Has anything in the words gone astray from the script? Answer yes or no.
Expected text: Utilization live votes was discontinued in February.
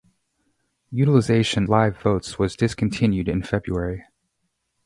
no